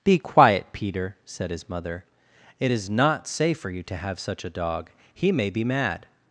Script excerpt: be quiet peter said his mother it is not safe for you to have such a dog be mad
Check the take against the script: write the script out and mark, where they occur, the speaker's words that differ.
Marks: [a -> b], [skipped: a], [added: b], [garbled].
be quiet peter said his mother it is not safe for you to have such a dog [added: he may] be mad